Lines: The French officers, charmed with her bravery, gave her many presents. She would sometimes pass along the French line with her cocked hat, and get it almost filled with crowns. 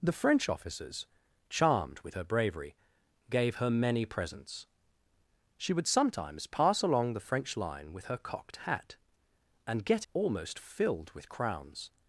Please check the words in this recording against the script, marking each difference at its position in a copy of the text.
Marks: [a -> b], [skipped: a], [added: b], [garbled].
The French officers, charmed with her bravery, gave her many presents. She would sometimes pass along the French line with her cocked hat, and get [skipped: it] almost filled with crowns.